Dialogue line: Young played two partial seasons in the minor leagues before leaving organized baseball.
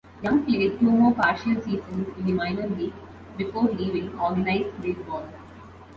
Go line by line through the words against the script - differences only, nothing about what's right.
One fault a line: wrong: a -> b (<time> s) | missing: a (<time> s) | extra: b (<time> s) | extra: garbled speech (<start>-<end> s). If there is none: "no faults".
extra: more (0.9 s)